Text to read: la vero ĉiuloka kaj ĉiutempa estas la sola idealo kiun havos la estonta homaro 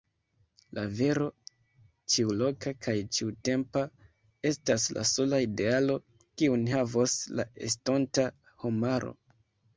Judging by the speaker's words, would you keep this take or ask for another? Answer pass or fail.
pass